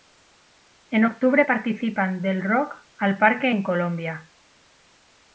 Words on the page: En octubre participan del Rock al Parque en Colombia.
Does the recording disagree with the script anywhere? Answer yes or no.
no